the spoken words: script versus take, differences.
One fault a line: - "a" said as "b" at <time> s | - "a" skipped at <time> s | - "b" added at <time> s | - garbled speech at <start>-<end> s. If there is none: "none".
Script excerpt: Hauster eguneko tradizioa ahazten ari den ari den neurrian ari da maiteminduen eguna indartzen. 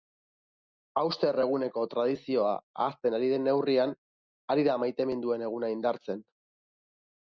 - "ari den" skipped at 3.5 s